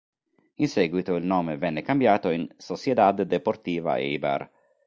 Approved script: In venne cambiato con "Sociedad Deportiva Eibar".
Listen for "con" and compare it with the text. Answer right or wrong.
wrong